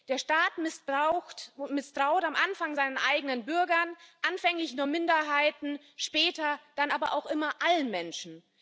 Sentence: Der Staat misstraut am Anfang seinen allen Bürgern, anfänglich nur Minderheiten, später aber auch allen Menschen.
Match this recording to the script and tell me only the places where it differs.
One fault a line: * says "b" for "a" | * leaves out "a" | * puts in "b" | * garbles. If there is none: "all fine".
* says "eigenen" for "allen"
* puts in "dann"
* puts in "immer"